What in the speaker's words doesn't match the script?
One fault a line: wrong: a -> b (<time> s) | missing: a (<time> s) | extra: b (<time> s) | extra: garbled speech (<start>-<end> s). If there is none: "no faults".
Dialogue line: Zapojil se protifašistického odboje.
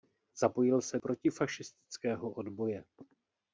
no faults